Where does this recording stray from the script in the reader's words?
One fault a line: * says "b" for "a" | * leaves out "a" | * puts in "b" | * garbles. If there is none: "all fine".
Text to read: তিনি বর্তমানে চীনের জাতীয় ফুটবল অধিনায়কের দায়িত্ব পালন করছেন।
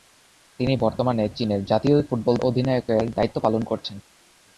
all fine